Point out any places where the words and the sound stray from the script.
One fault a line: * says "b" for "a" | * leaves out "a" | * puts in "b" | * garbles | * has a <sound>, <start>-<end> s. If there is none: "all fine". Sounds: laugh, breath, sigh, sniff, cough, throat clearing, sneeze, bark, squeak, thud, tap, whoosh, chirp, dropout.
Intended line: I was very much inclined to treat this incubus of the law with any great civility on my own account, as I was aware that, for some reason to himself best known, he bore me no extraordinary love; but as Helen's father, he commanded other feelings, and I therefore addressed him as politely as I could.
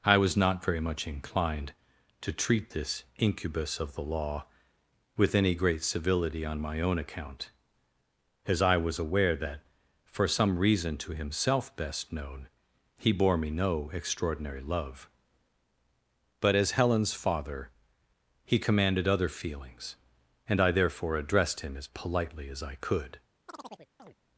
* puts in "not"
* has a chirp, 23.5-24.2 s